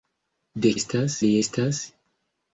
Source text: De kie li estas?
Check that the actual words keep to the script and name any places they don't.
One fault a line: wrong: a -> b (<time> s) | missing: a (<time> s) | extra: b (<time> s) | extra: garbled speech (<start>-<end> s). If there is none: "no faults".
wrong: kie -> estas (0.8 s)